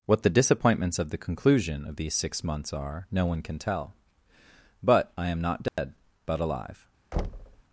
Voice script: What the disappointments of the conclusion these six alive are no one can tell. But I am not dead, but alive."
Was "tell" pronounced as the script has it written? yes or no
yes